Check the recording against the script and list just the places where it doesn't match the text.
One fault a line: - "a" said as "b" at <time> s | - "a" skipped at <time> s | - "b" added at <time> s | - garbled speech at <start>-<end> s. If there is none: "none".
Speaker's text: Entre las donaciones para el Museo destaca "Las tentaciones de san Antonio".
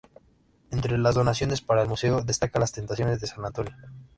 none